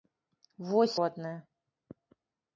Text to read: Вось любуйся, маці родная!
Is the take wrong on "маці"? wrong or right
wrong